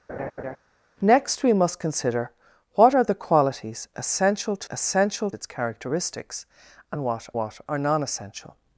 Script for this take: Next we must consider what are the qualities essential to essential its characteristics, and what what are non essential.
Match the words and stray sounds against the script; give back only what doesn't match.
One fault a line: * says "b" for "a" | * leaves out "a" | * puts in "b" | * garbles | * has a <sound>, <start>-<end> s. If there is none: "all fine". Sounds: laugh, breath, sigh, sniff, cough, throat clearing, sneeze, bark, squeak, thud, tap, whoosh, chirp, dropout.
* has a laugh, 0.1-0.6 s